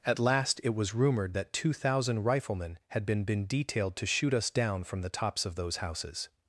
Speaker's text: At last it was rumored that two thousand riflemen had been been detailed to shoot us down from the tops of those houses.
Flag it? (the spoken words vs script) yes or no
no